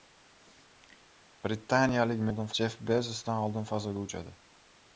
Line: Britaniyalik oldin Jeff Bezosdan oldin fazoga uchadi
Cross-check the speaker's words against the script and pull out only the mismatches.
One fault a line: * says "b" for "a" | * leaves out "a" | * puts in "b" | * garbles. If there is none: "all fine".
all fine